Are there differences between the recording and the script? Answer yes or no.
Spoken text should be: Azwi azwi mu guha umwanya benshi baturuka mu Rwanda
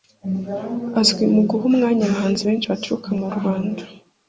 yes